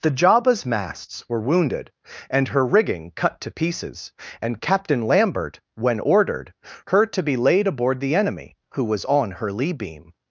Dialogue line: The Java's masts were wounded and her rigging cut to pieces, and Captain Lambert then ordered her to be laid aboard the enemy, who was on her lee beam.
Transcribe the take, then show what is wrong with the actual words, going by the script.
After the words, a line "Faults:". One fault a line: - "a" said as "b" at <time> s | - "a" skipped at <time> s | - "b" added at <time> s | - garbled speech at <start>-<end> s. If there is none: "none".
The Java's masts were wounded and her rigging cut to pieces, and Captain Lambert when ordered her to be laid aboard the enemy, who was on her lee beam.
Faults:
- "then" said as "when" at 5.8 s